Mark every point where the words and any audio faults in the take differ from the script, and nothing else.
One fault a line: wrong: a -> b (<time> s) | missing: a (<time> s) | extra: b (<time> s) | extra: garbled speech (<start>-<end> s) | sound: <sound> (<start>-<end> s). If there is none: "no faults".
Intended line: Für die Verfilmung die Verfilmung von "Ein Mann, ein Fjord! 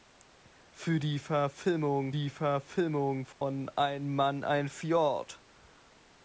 sound: dropout (3.3-3.4 s)